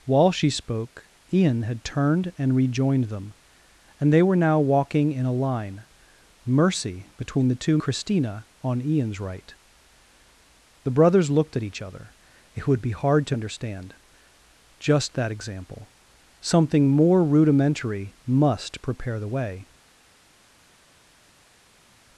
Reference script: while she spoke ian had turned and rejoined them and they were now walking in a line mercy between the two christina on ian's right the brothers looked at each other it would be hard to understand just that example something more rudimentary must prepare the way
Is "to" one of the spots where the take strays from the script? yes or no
no